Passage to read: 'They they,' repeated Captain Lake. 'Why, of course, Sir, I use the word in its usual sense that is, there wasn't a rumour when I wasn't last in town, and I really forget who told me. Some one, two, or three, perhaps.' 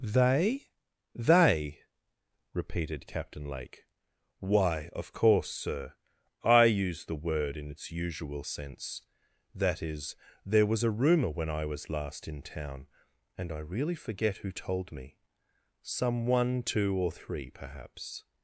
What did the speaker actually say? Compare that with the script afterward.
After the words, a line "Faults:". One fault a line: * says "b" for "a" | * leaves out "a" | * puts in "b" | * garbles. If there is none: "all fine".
'They they,' repeated Captain Lake. 'Why, of course, Sir, I use the word in its usual sense that is, there was a rumour when I was last in town, and I really forget who told me. Some one, two, or three, perhaps.'
Faults:
* says "was" for "wasn't"
* says "was" for "wasn't"